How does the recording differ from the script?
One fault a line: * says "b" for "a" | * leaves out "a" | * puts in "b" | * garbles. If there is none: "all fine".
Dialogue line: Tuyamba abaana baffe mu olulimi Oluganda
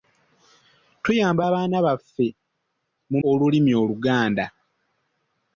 all fine